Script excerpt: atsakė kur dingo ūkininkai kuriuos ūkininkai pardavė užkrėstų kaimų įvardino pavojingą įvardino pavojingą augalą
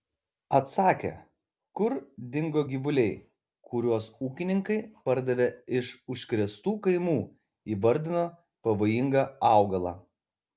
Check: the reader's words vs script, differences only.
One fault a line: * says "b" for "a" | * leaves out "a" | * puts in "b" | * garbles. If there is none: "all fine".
* says "gyvuliai" for "ūkininkai"
* puts in "iš"
* leaves out "įvardino pavojingą"